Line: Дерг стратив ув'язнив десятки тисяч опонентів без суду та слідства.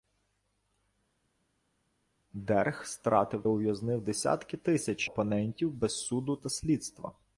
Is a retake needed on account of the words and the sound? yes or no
no